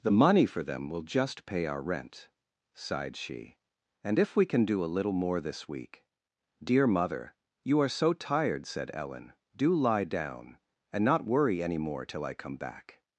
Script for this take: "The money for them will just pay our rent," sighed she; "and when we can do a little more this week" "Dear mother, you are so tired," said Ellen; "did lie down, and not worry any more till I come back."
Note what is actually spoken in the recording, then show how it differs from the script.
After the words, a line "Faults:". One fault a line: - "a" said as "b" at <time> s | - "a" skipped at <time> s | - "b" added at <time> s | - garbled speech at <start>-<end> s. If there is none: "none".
"The money for them will just pay our rent," sighed she; "and if we can do a little more this week" "Dear mother, you are so tired," said Ellen; "do lie down, and not worry any more till I come back."
Faults:
- "when" said as "if" at 4.2 s
- "did" said as "do" at 9.6 s